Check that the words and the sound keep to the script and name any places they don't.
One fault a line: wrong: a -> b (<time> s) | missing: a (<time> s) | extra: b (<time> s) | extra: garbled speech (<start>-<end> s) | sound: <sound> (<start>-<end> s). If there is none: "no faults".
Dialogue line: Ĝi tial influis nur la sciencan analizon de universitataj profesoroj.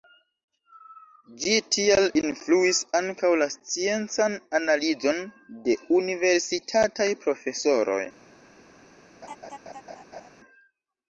wrong: nur -> ankaŭ (3.0 s)
sound: laugh (9.2-10.3 s)